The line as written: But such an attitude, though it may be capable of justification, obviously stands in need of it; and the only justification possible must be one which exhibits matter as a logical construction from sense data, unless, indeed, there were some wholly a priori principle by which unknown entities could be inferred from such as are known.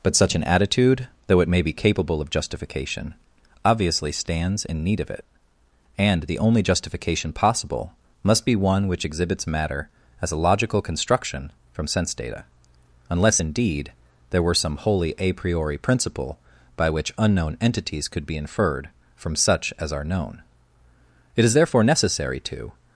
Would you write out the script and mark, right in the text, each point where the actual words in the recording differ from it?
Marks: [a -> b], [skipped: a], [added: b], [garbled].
But such an attitude, though it may be capable of justification, obviously stands in need of it; and the only justification possible must be one which exhibits matter as a logical construction from sense data, unless, indeed, there were some wholly a priori principle by which unknown entities could be inferred from such as are known. [added: It is therefore necessary to]